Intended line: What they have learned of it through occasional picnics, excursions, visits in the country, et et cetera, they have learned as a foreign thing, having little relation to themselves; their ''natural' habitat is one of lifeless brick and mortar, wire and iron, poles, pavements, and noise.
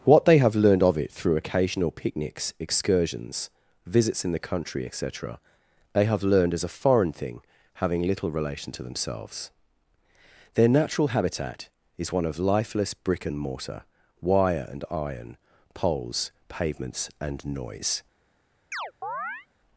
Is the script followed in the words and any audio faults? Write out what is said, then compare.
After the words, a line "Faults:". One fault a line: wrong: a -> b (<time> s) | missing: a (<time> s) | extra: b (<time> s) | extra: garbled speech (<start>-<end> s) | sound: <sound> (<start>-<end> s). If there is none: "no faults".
What they have learned of it through occasional picnics, excursions, visits in the country, et cetera, they have learned as a foreign thing, having little relation to themselves; their ''natural' habitat is one of lifeless brick and mortar, wire and iron, poles, pavements, and noise.
Faults:
missing: et (5.0 s)
sound: chirp (18.7-19.5 s)